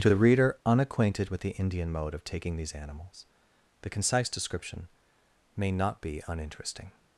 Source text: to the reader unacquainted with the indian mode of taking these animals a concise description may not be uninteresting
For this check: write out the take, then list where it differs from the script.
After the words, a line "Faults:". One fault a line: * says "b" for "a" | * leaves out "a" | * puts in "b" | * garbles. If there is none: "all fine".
to the reader unacquainted with the indian mode of taking these animals the concise description may not be uninteresting
Faults:
* says "the" for "a"